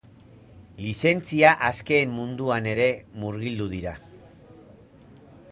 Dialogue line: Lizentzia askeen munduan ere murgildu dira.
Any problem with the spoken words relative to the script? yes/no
no